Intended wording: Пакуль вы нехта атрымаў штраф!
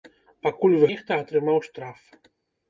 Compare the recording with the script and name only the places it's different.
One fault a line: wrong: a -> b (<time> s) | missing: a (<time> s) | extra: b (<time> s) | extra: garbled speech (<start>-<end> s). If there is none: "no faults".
no faults